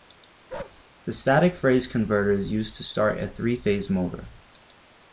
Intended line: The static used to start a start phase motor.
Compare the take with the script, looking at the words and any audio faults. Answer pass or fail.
fail